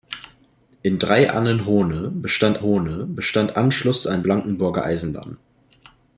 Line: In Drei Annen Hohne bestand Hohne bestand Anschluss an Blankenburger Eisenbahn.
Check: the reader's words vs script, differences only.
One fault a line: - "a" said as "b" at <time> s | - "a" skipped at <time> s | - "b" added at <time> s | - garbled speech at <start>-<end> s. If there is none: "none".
none